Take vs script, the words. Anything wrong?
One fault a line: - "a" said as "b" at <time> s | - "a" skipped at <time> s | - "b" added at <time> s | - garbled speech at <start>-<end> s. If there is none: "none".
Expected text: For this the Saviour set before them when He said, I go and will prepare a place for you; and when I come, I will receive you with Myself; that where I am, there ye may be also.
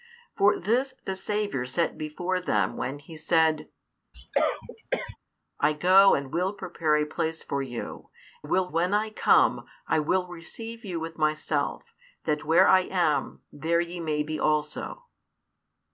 - "and" said as "will" at 8.4 s